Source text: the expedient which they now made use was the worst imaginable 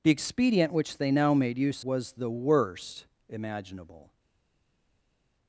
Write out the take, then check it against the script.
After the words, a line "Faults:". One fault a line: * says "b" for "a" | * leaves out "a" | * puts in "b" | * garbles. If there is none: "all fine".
the expedient which they now made use was the worst imaginable
Faults:
all fine